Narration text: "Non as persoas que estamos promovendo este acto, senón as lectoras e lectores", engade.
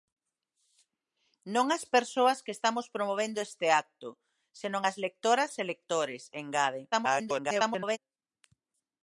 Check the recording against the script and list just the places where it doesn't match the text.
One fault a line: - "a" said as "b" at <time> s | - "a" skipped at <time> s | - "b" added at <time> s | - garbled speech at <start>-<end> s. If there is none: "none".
- garbled speech at 6.9-8.0 s